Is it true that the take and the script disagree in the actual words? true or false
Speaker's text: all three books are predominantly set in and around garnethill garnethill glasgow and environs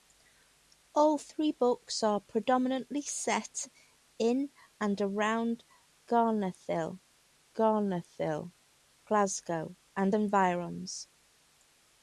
false